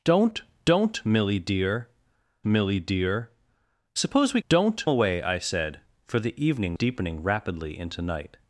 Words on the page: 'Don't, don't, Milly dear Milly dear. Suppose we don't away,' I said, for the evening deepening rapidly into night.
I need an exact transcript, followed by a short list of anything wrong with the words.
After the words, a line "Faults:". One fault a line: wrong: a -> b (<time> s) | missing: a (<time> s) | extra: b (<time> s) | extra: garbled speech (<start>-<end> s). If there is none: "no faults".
'Don't, don't, Milly dear Milly dear. Suppose we don't away,' I said, for the evening deepening rapidly into night.
Faults:
no faults